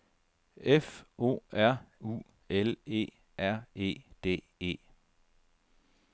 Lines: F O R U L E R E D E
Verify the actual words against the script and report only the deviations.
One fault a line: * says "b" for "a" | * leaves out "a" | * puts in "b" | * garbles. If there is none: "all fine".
all fine